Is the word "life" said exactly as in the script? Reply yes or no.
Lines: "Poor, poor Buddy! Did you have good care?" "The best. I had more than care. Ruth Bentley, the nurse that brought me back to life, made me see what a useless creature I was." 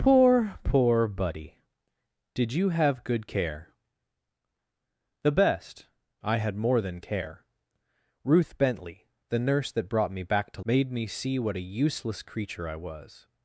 no